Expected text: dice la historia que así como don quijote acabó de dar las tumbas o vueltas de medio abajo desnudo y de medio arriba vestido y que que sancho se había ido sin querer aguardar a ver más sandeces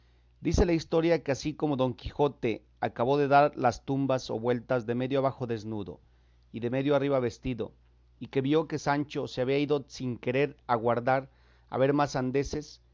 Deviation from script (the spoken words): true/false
true